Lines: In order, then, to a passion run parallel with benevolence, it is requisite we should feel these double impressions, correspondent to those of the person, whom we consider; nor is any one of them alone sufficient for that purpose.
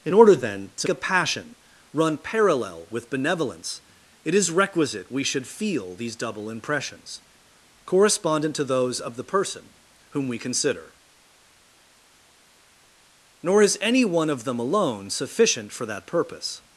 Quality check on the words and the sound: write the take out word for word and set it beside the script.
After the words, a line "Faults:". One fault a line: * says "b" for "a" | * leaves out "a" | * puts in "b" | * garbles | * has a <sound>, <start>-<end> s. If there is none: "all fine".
In order, then, to a passion run parallel with benevolence, it is requisite we should feel these double impressions, correspondent to those of the person, whom we consider; nor is any one of them alone sufficient for that purpose.
Faults:
all fine